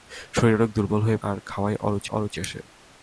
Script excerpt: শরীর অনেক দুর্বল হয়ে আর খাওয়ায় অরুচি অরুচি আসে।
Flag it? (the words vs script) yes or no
no